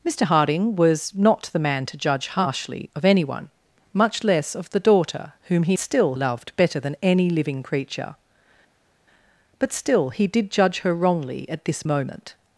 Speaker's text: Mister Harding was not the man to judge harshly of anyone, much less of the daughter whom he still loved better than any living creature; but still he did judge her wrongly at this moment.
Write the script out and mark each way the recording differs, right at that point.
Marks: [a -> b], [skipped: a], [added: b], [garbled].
Mister Harding was not the man to judge harshly of anyone, much less of the daughter whom he still loved better than any living creature; but still he did judge her wrongly at this moment.